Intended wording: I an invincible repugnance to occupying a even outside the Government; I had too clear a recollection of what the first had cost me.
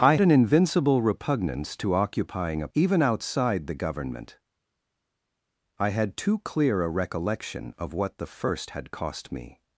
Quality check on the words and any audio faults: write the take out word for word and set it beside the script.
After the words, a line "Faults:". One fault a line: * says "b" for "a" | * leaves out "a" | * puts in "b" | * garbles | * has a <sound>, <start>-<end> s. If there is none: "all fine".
I an invincible repugnance to occupying a even outside the Government; I had too clear a recollection of what the first had cost me.
Faults:
all fine